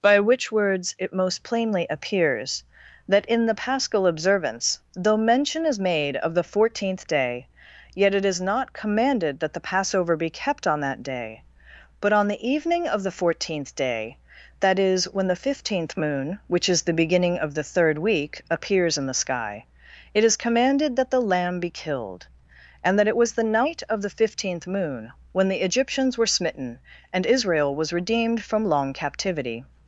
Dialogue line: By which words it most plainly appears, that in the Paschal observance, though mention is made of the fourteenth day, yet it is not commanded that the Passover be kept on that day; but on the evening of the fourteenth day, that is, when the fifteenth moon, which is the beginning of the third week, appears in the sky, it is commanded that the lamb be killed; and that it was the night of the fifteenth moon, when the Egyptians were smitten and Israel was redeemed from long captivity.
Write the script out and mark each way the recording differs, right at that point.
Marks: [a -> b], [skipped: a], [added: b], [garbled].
By which words it most plainly appears, that in the Paschal observance, though mention is made of the fourteenth day, yet it is not commanded that the Passover be kept on that day; but on the evening of the fourteenth day, that is, when the fifteenth moon, which is the beginning of the third week, appears in the sky, it is commanded that the lamb be killed; and that it was the night of the fifteenth moon, when the Egyptians were smitten and Israel was redeemed from long captivity.